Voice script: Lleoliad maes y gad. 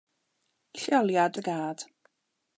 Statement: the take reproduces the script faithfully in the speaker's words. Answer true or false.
false